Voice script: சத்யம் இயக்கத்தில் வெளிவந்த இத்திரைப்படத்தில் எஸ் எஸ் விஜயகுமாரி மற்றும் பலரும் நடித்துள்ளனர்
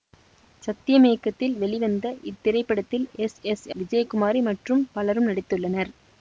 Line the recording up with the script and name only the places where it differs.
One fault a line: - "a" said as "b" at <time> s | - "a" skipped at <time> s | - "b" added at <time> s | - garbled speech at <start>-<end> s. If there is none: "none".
none